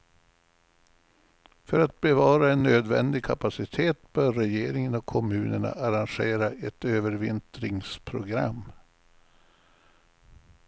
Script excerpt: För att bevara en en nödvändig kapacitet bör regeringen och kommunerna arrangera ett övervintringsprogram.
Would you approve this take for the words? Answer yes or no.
no